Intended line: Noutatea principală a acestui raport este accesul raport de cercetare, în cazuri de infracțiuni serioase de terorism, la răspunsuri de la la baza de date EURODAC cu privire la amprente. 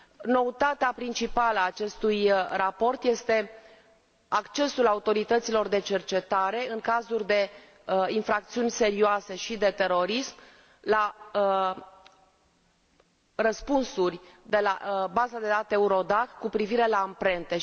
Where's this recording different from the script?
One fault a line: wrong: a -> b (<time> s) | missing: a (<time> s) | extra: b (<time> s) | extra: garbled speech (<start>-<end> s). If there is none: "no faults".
wrong: raport -> autorităților (4.9 s)
extra: și (9.3 s)
missing: la (15.1 s)